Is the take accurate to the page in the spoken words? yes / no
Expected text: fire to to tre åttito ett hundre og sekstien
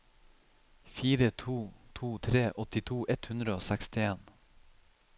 yes